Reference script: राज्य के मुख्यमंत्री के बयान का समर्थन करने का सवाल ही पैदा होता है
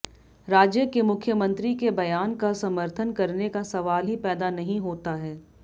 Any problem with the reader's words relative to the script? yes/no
yes